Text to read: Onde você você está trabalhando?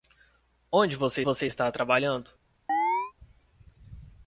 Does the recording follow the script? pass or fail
pass